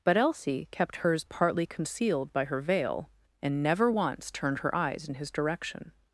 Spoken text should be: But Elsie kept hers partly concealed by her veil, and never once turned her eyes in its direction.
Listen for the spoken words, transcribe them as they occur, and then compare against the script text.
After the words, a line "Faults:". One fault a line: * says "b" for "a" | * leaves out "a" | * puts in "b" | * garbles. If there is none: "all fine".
But Elsie kept hers partly concealed by her veil, and never once turned her eyes in his direction.
Faults:
* says "his" for "its"